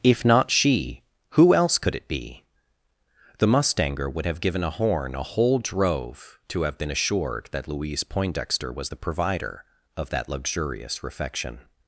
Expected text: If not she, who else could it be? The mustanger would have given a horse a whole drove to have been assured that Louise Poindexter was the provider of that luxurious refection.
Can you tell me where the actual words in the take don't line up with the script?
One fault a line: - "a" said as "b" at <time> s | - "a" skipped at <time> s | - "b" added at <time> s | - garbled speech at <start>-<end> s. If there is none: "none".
- "horse" said as "horn" at 4.7 s